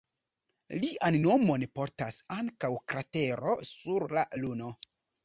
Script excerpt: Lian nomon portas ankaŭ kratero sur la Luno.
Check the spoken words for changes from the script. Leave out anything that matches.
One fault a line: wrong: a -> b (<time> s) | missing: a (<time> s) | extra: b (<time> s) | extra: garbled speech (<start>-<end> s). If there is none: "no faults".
no faults